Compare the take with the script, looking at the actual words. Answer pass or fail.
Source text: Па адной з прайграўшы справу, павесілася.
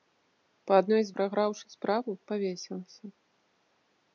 pass